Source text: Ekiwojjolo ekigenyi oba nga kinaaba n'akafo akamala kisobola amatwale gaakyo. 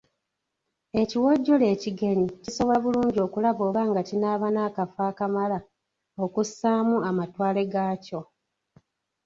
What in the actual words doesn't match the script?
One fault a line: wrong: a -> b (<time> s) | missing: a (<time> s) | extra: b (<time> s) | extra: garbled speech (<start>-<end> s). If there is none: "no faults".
extra: kisobola bulungi okulaba (2.4 s)
wrong: kisobola -> okussaamu (6.2 s)